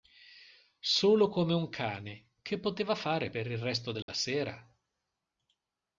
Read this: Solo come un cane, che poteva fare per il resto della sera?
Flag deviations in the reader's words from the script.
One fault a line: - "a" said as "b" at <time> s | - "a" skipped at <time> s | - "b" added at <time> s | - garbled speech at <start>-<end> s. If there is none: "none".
none